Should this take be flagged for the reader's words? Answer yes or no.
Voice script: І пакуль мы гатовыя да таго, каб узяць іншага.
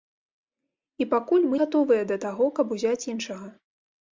no